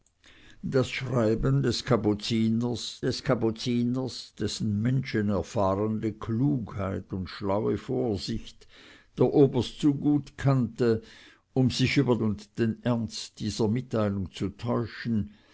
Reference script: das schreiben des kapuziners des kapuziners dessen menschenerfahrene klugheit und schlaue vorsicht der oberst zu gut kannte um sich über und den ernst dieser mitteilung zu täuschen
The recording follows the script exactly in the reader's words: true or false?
true